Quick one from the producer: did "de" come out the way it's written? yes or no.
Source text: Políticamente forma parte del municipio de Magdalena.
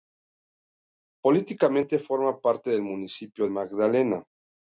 no